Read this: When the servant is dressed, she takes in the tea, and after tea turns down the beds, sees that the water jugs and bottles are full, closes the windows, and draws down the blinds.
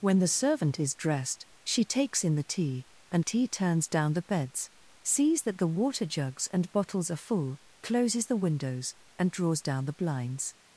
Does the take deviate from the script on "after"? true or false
true